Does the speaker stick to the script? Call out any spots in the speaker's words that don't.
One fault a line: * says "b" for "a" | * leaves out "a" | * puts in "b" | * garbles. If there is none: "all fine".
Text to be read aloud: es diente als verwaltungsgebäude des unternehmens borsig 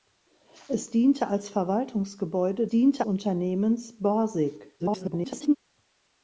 * says "diente" for "des"
* garbles